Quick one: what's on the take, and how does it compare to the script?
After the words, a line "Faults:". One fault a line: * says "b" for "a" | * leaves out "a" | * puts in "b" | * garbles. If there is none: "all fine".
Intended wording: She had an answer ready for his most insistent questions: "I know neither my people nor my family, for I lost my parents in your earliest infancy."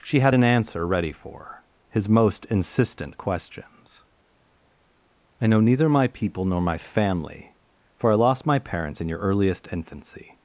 She had an answer ready for his most insistent questions: "I know neither my people nor my family, for I lost my parents in your earliest infancy."
Faults:
all fine